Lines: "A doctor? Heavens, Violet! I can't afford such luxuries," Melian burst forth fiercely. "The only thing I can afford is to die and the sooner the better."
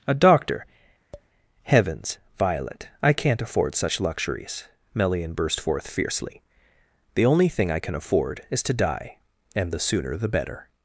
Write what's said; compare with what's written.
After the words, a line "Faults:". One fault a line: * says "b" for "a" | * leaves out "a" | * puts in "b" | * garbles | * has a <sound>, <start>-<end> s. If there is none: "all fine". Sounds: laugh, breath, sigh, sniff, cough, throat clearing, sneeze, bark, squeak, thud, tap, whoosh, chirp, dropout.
"A doctor? Heavens, Violet! I can't afford such luxuries," Melian burst forth fiercely. "The only thing I can afford is to die and the sooner the better."
Faults:
* has a tap, 1.1-1.3 s